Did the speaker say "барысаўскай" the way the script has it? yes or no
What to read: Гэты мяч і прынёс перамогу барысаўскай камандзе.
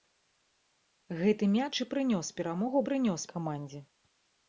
no